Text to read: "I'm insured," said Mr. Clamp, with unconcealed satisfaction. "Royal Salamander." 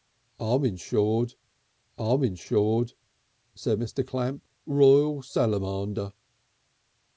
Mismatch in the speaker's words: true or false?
true